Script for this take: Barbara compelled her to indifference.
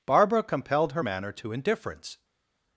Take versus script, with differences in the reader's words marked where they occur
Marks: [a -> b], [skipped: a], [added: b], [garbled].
Barbara compelled her [added: manner] to indifference.